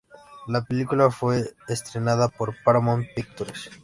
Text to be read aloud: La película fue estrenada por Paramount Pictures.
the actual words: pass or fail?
pass